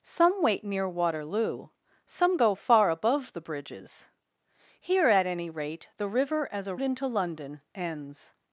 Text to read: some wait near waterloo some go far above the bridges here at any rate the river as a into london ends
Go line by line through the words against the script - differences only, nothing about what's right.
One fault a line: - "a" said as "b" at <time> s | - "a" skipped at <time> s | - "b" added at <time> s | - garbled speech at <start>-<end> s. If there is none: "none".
none